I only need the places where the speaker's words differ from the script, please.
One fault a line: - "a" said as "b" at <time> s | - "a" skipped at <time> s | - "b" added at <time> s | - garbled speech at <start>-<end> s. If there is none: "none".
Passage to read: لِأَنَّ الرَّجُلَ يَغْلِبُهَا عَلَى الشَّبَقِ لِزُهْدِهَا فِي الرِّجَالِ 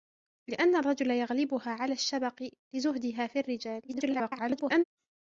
- garbled speech at 3.9-4.8 s